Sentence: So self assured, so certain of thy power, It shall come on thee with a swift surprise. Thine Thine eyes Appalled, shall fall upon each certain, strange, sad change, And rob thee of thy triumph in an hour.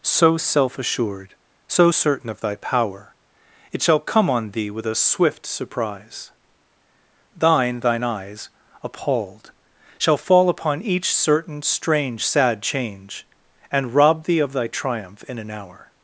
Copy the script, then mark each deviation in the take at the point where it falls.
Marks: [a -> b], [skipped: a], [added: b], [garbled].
So self assured, so certain of thy power, It shall come on thee with a swift surprise. Thine Thine eyes Appalled, shall fall upon each certain, strange, sad change, And rob thee of thy triumph in an hour.